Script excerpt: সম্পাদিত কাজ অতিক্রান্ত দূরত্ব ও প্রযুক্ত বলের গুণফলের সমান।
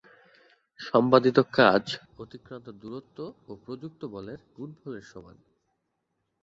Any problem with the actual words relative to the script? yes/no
no